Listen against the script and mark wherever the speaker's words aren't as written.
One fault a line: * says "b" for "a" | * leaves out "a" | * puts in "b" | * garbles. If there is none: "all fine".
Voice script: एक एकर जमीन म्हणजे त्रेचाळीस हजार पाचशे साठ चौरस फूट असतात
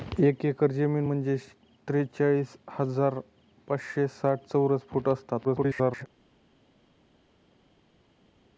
* garbles